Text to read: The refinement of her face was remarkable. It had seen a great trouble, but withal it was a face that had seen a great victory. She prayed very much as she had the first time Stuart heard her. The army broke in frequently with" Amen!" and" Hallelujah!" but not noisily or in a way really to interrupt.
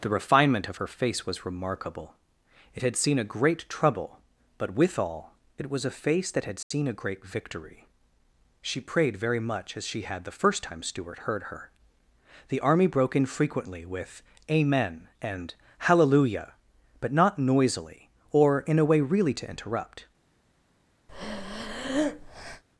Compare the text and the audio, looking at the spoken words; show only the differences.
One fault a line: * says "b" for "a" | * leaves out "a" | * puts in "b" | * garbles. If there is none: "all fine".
all fine